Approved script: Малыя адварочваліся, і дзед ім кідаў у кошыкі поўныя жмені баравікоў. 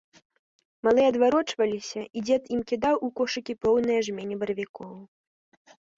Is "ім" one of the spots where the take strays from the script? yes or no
no